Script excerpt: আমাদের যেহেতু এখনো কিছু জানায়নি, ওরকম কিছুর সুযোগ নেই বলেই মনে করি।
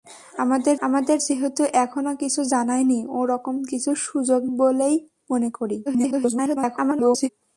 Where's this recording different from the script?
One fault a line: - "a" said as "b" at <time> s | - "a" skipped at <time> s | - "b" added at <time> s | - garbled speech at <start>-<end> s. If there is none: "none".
- "আমাদের" added at 0.8 s
- "নেই" skipped at 4.4 s
- garbled speech at 5.9-7.3 s